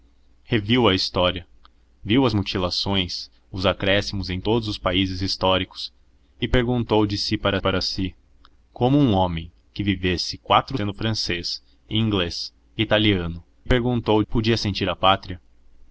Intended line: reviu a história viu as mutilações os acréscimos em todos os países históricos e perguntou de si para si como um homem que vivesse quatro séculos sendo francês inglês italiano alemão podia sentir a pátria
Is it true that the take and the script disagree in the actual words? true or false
true